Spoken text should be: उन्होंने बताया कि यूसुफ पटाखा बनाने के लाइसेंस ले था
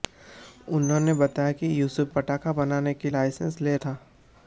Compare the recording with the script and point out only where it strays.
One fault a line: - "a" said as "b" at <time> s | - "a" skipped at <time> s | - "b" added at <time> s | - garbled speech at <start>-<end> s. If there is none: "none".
none